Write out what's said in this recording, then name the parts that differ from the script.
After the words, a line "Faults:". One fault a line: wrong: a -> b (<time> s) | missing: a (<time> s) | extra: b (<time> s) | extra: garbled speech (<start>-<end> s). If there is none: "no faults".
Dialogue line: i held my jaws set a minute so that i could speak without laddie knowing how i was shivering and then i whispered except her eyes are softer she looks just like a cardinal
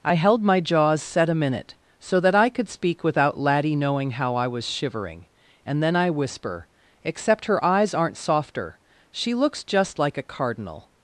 i held my jaws set a minute so that i could speak without laddie knowing how i was shivering and then i whisper except her eyes aren't softer she looks just like a cardinal
Faults:
wrong: whispered -> whisper (6.1 s)
wrong: are -> aren't (7.9 s)